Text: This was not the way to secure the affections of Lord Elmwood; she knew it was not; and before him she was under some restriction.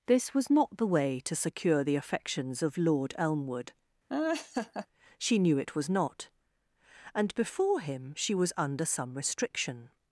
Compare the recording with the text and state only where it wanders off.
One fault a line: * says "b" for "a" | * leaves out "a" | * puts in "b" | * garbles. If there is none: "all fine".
all fine